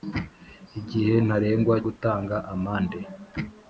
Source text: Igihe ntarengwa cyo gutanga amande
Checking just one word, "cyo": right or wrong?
wrong